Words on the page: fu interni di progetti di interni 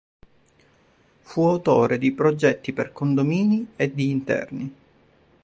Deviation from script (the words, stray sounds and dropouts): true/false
true